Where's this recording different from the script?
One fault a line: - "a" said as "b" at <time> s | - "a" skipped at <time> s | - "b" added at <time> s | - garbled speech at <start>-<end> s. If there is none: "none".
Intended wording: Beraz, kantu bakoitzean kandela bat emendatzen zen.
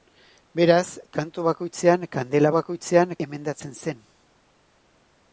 - "bat" said as "bakoitzean" at 2.6 s